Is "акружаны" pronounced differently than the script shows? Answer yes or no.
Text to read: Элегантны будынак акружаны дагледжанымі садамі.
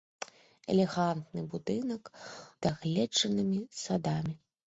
yes